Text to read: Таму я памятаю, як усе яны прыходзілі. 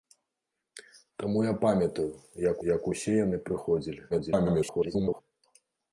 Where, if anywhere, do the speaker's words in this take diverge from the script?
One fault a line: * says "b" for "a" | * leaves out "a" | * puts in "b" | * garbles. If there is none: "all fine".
* puts in "як"
* garbles